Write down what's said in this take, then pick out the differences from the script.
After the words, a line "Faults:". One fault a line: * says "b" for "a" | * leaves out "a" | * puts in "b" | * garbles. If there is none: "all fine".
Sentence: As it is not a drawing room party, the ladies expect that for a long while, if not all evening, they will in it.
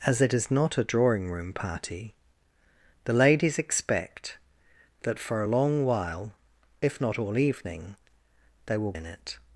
As it is not a drawing room party, the ladies expect that for a long while, if not all evening, they will in it.
Faults:
all fine